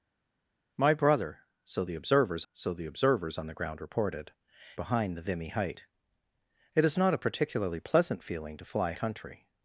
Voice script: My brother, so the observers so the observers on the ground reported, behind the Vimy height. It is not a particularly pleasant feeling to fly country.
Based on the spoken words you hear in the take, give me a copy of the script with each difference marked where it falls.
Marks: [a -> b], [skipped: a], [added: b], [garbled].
My brother, so the observers so the observers on the ground reported, behind the Vimy height. It is not a particularly pleasant feeling to fly country.